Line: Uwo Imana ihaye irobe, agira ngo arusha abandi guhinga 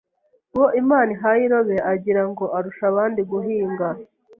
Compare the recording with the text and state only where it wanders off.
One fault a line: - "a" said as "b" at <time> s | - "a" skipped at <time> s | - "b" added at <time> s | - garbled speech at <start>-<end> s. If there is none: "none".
none